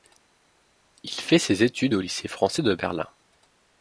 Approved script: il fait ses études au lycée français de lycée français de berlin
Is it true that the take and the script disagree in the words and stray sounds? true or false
true